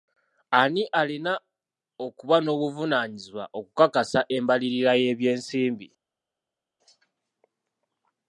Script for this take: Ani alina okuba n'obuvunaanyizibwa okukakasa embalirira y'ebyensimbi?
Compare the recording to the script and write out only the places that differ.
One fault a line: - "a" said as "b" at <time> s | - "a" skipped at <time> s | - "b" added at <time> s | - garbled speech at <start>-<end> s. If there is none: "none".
none